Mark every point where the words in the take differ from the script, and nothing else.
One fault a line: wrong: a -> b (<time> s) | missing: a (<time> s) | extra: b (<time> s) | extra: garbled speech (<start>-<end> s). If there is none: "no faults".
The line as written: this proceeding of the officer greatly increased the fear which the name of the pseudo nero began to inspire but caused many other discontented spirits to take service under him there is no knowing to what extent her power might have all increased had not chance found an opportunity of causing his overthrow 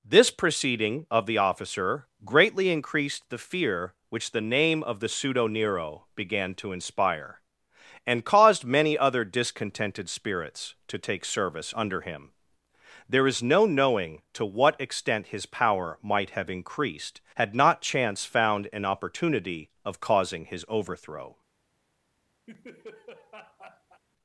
wrong: but -> and (8.1 s)
wrong: her -> his (15.3 s)
missing: all (16.5 s)